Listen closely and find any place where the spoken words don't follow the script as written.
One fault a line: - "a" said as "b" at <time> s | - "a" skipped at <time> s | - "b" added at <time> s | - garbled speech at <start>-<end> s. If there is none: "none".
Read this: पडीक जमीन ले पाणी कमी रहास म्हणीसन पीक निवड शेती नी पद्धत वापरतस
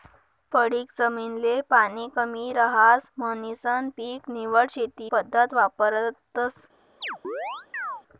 - "नी" skipped at 5.1 s